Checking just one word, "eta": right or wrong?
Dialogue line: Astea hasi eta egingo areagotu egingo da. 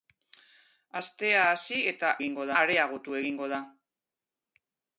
right